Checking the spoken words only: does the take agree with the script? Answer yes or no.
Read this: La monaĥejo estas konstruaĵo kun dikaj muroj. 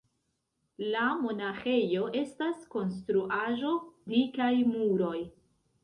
no